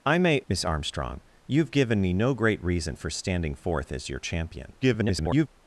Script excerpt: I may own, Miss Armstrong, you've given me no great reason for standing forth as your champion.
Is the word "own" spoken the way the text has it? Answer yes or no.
no